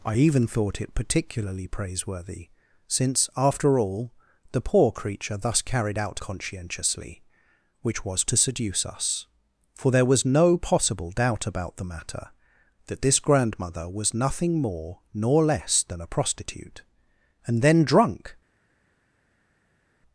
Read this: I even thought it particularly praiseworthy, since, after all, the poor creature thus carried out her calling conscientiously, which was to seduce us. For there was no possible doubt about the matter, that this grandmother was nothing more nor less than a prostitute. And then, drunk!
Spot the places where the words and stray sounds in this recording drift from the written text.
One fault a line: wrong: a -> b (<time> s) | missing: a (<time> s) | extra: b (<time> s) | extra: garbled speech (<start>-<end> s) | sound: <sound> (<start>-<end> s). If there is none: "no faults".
missing: her calling (6.2 s)